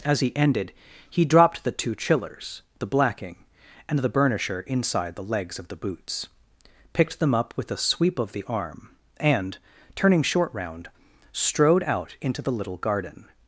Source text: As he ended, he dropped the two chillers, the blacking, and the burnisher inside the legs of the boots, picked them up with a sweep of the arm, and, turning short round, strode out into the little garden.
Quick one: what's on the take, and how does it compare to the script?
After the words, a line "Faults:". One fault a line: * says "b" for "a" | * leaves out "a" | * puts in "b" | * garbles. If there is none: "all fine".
As he ended, he dropped the two chillers, the blacking, and the burnisher inside the legs of the boots, picked them up with a sweep of the arm, and, turning short round, strode out into the little garden.
Faults:
all fine